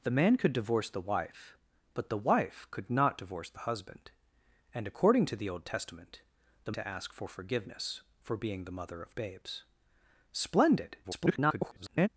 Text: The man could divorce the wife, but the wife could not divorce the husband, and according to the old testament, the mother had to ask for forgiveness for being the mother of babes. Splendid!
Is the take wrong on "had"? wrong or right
wrong